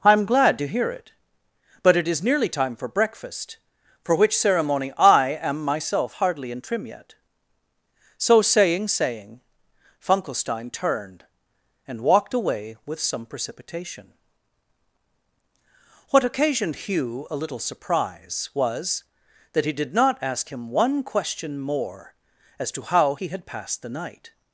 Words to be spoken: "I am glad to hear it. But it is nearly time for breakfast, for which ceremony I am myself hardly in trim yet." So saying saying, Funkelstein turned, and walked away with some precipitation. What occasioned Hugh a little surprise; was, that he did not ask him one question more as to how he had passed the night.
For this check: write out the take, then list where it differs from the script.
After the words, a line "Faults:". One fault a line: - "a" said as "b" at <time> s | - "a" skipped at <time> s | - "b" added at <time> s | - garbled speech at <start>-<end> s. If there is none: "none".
"I am glad to hear it. But it is nearly time for breakfast, for which ceremony I am myself hardly in trim yet." So saying saying, Funkelstein turned, and walked away with some precipitation. What occasioned Hugh a little surprise; was, that he did not ask him one question more as to how he had passed the night.
Faults:
none